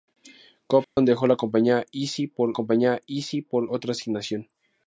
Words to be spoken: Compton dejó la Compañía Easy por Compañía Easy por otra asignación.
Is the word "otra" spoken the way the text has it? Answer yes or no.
yes